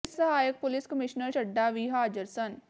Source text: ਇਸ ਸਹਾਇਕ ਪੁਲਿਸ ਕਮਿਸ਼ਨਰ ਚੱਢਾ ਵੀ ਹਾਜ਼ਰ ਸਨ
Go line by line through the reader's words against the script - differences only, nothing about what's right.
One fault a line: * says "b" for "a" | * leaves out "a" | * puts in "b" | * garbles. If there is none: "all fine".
all fine